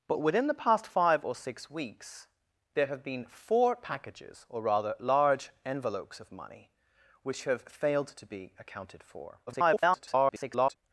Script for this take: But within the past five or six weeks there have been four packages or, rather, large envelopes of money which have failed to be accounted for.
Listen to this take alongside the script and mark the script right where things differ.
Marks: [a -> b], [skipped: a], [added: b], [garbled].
But within the past five or six weeks there have been four packages or, rather, large envelopes of money which have failed to be accounted for. [garbled]